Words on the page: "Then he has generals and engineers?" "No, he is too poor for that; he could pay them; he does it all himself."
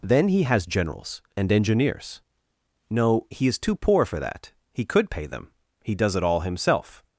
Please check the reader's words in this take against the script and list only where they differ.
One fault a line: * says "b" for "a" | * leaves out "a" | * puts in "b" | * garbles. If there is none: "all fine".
all fine